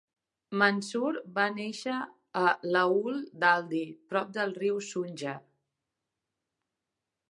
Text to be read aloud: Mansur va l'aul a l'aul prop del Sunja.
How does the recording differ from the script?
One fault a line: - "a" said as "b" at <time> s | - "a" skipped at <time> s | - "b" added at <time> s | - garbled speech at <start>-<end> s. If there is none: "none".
- "l'aul" said as "néixer" at 1.6 s
- "d'Aldi" added at 3.4 s
- "riu" added at 4.6 s